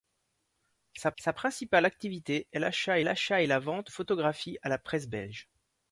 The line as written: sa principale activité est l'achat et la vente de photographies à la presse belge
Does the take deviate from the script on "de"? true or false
true